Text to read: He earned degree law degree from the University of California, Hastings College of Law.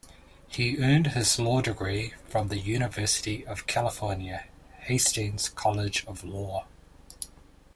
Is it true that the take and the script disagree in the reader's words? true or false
true